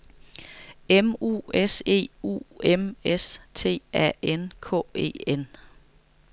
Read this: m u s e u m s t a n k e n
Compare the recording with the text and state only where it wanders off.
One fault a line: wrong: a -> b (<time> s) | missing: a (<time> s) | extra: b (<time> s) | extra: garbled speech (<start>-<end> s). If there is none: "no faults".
no faults